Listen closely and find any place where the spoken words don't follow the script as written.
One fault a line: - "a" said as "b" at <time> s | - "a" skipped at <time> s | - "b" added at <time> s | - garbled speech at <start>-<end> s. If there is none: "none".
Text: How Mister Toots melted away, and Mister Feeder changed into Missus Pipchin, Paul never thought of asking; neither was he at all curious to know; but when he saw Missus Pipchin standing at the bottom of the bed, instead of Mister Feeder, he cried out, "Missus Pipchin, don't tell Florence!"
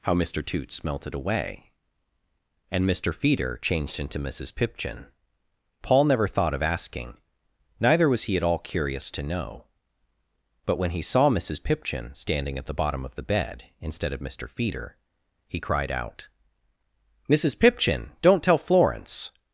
none